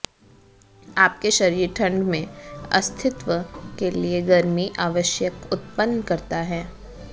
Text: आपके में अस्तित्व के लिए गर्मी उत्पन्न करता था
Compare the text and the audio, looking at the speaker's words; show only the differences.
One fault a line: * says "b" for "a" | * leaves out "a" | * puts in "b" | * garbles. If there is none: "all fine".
* puts in "शरीर ठंड"
* puts in "आवश्यक"
* says "है" for "था"